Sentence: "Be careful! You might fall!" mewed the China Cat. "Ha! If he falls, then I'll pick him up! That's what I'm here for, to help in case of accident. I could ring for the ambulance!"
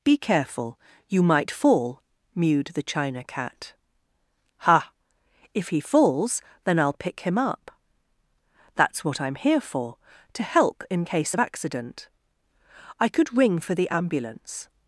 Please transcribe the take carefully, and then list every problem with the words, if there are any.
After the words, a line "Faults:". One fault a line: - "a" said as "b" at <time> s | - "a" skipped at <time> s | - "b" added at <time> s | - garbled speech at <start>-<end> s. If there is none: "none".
"Be careful! You might fall!" mewed the China Cat. "Ha! If he falls, then I'll pick him up! That's what I'm here for, to help in case of accident. I could ring for the ambulance!"
Faults:
none